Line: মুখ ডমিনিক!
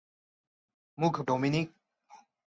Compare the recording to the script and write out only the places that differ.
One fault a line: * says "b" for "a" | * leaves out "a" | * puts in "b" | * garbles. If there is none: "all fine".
all fine